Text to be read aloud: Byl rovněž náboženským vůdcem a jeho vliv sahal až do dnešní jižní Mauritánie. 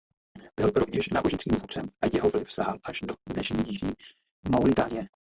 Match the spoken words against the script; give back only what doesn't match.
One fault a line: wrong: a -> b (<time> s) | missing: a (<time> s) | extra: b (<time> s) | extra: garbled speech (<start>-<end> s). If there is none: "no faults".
no faults